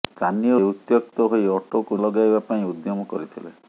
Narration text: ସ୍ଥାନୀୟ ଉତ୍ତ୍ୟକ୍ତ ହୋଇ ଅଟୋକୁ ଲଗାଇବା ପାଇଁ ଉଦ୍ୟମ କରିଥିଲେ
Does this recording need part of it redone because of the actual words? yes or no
no